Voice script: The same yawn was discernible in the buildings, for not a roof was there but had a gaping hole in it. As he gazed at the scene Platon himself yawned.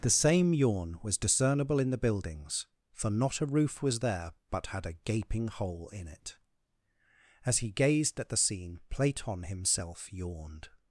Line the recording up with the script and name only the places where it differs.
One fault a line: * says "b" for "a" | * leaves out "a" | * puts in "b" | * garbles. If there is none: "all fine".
all fine